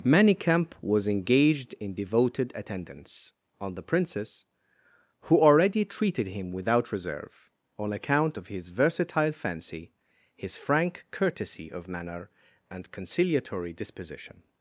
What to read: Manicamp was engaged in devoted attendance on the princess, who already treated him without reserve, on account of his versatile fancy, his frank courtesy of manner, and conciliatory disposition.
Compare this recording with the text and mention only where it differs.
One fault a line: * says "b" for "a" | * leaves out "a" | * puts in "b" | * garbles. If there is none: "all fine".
all fine